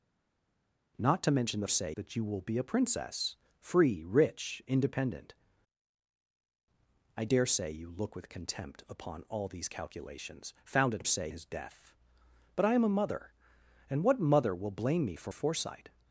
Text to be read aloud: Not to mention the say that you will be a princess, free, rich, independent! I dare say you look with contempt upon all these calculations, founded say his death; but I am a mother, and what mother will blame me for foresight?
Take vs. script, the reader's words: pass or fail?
pass